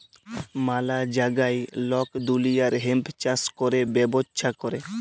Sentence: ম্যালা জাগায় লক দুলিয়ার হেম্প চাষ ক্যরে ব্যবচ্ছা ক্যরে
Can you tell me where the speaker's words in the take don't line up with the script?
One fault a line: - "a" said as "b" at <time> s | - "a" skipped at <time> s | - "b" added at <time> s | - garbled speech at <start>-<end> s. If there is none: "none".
none